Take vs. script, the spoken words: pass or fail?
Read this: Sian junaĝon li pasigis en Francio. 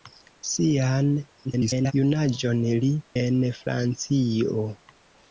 fail